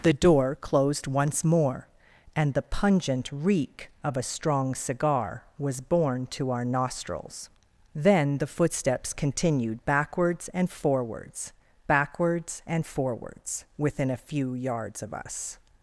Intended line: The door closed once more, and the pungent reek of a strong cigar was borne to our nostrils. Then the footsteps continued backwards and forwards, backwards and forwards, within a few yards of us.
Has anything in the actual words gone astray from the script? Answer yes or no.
no